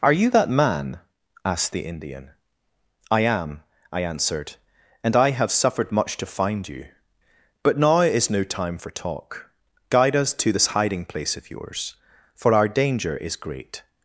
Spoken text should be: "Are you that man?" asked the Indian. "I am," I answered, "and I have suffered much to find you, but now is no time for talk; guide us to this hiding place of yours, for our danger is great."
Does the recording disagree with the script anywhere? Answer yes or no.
no